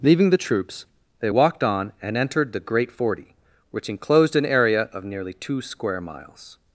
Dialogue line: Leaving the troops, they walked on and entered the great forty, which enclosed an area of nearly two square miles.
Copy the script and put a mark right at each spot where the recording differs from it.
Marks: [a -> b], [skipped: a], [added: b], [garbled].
Leaving the troops, they walked on and entered the great forty, which enclosed an area of nearly two square miles.